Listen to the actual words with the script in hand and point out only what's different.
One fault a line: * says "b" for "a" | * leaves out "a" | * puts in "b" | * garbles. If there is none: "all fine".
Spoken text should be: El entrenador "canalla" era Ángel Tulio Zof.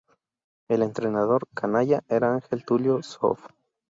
all fine